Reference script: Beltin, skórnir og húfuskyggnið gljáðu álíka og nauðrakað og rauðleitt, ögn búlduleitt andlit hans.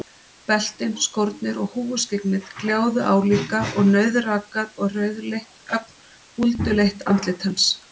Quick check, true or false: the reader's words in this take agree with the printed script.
true